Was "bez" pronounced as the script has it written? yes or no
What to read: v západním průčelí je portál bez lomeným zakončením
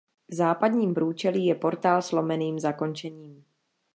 no